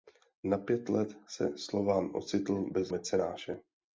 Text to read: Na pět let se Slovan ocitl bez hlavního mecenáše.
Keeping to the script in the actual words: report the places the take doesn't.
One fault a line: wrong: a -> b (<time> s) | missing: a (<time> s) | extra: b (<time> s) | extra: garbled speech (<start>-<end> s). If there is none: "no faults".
missing: hlavního (2.9 s)